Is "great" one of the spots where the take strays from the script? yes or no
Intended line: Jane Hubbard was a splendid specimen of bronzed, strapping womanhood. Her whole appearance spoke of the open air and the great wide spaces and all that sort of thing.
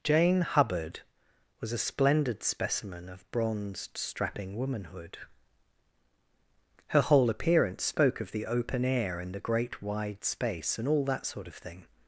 no